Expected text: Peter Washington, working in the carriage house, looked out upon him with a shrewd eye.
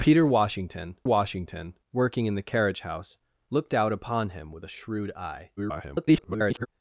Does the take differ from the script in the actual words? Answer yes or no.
yes